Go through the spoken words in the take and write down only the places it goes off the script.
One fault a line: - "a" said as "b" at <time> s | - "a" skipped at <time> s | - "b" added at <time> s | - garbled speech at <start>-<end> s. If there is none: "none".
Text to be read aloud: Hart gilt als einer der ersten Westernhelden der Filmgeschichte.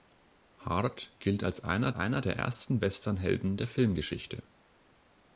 - "einer" added at 1.9 s